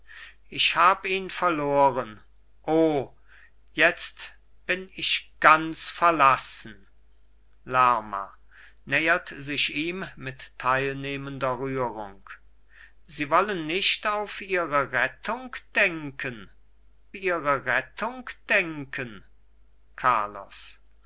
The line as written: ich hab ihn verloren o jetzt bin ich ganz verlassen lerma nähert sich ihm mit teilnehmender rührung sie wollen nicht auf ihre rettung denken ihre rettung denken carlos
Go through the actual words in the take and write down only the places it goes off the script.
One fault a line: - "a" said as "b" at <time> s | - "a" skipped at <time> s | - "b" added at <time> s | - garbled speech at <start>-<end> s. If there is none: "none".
none